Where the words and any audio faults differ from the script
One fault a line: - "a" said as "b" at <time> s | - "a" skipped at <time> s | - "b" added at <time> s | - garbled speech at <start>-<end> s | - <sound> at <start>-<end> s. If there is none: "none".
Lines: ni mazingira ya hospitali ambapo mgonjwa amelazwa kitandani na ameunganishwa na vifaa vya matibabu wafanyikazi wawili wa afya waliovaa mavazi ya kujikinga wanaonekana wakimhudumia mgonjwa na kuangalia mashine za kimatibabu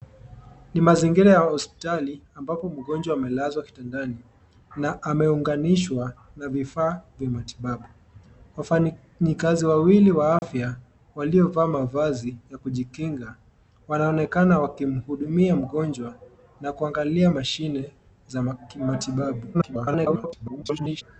- dropout at 10.4-10.4 s
- garbled speech at 19.5-21.0 s